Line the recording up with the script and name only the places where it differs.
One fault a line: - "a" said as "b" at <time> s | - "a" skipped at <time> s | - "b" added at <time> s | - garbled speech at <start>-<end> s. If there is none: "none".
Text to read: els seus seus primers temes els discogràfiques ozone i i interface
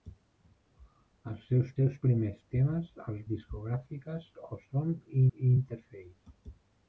none